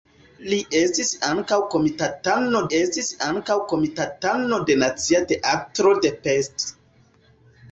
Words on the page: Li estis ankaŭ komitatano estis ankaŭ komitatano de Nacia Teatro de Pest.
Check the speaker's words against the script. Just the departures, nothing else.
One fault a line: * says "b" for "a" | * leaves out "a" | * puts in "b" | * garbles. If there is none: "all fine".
all fine